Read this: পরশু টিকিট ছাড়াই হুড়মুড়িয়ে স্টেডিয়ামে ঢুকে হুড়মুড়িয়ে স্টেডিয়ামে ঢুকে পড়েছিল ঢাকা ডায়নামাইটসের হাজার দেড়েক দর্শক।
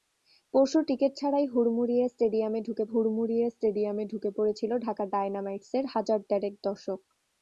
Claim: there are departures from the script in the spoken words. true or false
false